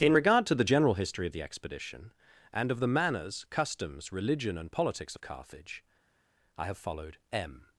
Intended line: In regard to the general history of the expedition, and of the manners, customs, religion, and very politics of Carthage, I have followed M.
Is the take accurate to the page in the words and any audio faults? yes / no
no